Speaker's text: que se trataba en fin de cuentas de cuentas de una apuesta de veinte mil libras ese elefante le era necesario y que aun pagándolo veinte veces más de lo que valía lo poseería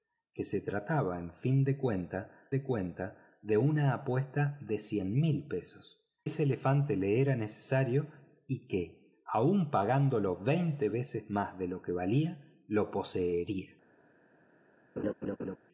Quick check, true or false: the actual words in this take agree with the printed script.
true